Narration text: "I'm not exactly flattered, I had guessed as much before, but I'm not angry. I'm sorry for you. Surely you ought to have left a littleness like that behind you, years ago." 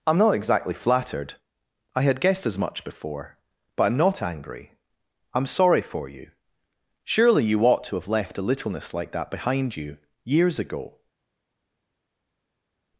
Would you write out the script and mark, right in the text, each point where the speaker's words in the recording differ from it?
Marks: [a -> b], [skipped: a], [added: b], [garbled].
"I'm not exactly flattered, I had guessed as much before, but I'm not angry. I'm sorry for you. Surely you ought to have left a littleness like that behind you, years ago."